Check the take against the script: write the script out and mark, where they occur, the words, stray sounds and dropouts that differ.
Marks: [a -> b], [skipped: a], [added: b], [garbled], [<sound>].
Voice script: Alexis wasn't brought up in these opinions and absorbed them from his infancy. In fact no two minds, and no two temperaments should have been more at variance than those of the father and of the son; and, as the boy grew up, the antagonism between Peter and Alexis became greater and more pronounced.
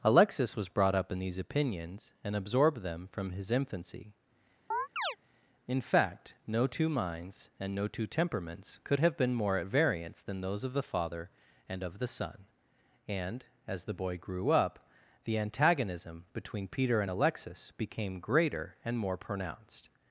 Alexis [wasn't -> was] brought up in these opinions and absorbed them from his infancy. [chirp] In fact no two minds, and no two temperaments [should -> could] have been more at variance than those of the father and of the son; and, as the boy grew up, the antagonism between Peter and Alexis became greater and more pronounced.